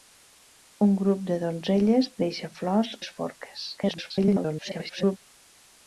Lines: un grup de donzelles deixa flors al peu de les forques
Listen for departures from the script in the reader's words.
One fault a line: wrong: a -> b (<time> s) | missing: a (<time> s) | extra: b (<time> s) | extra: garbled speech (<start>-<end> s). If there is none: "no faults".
missing: al peu de (3.0 s)
extra: garbled speech (3.8-5.2 s)